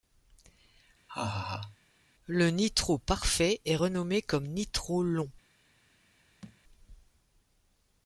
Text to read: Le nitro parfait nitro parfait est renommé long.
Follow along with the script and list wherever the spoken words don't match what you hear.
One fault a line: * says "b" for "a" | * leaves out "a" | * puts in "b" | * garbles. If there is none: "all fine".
* says "est renommé comme nitro" for "nitro parfait est renommé"